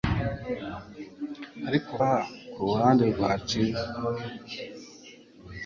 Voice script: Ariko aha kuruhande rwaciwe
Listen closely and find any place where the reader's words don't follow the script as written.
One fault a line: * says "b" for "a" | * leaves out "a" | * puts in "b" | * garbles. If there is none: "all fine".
all fine